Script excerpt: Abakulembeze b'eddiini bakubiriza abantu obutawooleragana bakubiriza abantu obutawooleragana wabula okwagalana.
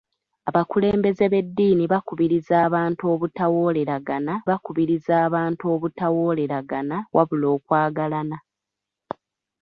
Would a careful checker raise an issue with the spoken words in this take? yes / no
no